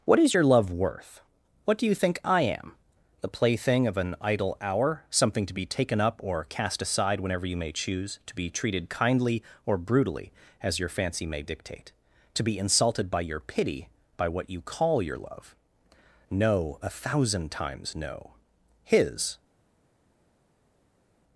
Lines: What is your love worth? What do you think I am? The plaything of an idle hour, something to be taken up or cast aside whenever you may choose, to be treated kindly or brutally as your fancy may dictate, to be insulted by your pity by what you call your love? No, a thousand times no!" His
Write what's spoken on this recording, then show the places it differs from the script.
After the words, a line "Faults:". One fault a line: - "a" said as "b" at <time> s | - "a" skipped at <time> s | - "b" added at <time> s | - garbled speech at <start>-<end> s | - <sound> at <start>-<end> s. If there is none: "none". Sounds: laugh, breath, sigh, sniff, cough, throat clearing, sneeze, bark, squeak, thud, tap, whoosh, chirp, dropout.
What is your love worth? What do you think I am? The plaything of an idle hour, something to be taken up or cast aside whenever you may choose, to be treated kindly or brutally as your fancy may dictate, to be insulted by your pity by what you call your love? No, a thousand times no!" His
Faults:
none